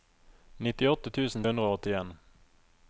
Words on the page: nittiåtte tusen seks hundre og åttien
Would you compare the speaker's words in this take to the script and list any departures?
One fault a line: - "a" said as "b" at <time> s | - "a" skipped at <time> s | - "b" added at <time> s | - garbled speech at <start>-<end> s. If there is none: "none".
- "seks" skipped at 1.4 s